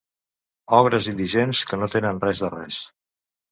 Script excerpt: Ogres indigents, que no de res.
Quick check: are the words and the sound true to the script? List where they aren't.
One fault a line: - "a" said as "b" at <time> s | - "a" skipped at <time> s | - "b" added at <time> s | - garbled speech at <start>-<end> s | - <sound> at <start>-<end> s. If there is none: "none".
- "tenen res" added at 2.0 s